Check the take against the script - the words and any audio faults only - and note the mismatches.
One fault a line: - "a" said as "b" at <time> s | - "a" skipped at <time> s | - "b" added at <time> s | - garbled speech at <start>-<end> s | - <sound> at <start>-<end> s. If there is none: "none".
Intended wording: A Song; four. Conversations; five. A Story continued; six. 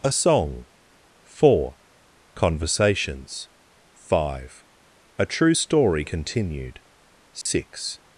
- "True" added at 5.3 s
- dropout at 7.4-7.5 s